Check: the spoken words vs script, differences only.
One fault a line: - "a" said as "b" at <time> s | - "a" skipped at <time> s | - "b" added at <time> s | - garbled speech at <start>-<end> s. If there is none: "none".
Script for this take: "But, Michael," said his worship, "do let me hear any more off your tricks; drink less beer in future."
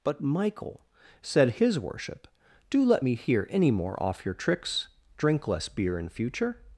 none